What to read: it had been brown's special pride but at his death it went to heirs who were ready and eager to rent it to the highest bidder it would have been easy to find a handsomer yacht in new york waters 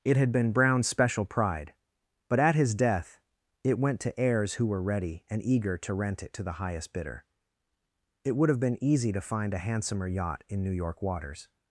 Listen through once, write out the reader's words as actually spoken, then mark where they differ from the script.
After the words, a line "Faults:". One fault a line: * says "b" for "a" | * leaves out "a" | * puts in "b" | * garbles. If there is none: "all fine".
it had been brown's special pride but at his death it went to heirs who were ready and eager to rent it to the highest bidder it would have been easy to find a handsomer yacht in new york waters
Faults:
all fine